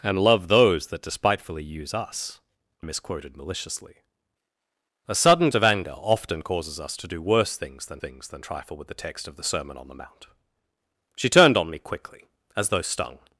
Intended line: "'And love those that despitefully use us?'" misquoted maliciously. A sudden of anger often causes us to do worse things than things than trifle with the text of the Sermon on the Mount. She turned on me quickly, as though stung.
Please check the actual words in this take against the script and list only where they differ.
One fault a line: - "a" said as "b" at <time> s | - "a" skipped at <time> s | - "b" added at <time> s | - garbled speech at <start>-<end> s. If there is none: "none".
none